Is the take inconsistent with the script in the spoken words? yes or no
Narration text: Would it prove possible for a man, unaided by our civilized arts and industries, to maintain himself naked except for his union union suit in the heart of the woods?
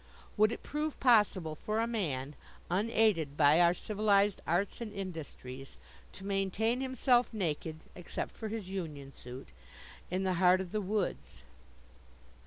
yes